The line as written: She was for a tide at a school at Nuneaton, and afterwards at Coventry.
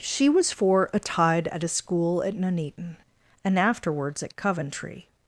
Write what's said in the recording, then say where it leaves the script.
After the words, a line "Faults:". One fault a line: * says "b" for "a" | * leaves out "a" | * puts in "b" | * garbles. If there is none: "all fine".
She was for a tide at a school at Nuneaton, and afterwards at Coventry.
Faults:
all fine